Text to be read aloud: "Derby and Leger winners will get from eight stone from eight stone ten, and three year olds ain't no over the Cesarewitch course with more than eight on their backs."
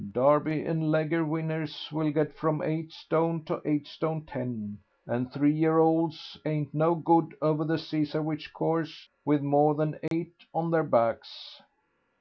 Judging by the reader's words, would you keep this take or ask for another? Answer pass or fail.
fail